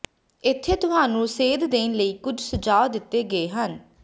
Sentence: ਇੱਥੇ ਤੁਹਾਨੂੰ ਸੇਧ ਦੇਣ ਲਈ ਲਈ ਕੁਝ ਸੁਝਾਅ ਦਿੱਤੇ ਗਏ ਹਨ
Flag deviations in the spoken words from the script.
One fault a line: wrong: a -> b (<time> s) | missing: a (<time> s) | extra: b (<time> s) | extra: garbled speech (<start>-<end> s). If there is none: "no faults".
missing: ਲਈ (2.1 s)